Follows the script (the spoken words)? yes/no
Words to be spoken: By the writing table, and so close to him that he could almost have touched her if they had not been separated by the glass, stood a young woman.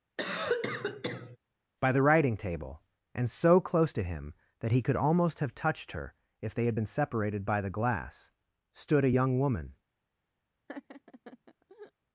no